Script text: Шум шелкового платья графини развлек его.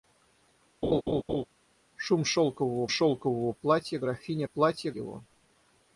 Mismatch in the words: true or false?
true